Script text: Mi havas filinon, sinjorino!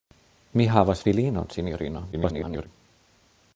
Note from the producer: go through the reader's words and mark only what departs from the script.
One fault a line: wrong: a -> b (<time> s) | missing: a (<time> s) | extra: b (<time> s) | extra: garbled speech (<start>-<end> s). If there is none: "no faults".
extra: garbled speech (2.1-2.7 s)